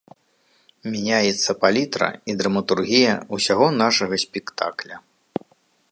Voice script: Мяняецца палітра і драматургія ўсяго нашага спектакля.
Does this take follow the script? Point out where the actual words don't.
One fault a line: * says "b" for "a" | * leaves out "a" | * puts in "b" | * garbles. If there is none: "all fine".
all fine